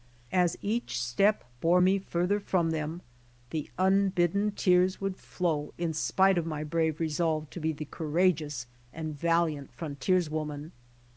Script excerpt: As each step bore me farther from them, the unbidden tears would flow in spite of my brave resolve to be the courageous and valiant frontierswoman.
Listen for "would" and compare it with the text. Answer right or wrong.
right